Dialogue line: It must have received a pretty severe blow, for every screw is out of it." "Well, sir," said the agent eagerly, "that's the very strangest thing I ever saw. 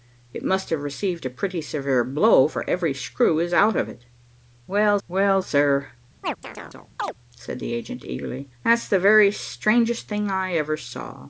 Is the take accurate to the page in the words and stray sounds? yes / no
no